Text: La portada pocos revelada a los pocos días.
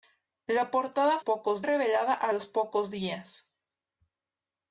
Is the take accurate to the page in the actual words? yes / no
yes